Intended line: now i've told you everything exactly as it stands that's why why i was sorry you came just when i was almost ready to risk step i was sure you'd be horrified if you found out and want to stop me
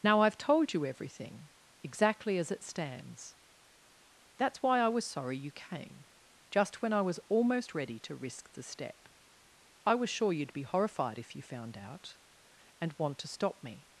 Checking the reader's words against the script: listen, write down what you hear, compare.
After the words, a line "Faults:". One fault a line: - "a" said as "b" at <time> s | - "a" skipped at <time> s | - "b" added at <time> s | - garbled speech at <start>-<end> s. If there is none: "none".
now i've told you everything exactly as it stands that's why i was sorry you came just when i was almost ready to risk the step i was sure you'd be horrified if you found out and want to stop me
Faults:
- "why" skipped at 4.8 s
- "the" added at 8.5 s